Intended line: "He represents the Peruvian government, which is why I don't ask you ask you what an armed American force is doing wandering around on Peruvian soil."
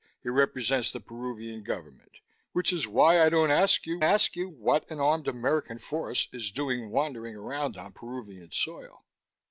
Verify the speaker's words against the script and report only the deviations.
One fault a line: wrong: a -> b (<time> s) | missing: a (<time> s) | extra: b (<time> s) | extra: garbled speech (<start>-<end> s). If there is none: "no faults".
no faults